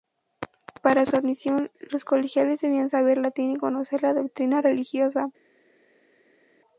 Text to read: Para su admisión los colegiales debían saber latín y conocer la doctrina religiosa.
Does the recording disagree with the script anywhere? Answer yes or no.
no